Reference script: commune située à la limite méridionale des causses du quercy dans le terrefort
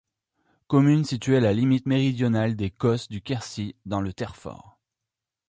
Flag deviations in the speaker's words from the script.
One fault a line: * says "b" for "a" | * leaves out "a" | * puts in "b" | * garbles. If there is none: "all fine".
all fine